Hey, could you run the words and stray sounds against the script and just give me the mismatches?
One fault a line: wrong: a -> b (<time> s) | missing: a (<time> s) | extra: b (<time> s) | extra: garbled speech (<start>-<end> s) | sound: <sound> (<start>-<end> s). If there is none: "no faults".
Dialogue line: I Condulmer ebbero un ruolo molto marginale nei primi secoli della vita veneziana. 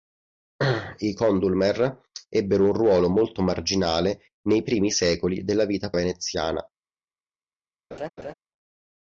sound: laugh (7.9-8.3 s)